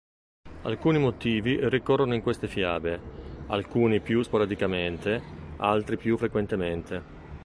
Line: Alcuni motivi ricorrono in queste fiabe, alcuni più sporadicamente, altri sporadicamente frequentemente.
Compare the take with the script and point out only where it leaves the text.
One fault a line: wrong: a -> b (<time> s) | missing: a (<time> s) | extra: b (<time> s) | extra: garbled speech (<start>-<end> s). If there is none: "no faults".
wrong: sporadicamente -> più (6.0 s)